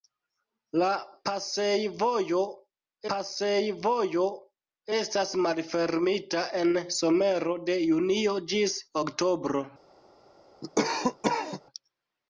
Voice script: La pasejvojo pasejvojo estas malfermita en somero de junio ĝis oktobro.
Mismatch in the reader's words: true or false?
false